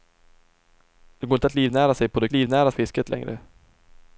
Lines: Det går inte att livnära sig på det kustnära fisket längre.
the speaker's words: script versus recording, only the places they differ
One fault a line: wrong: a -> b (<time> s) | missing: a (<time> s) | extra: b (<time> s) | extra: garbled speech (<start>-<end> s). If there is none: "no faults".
wrong: kustnära -> livnära (2.3 s)